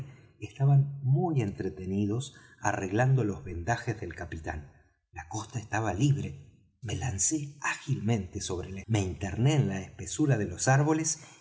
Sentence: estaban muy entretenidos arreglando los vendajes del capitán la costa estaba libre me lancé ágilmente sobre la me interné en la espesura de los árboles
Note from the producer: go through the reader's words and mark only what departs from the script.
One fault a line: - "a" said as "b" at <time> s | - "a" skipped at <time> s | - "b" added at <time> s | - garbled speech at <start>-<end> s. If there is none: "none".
none